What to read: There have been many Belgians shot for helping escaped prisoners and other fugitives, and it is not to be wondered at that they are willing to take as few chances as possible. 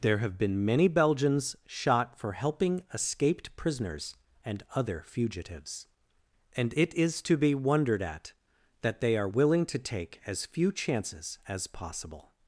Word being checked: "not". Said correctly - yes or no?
no